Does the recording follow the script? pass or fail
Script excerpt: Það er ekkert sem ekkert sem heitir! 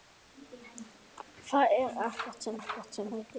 pass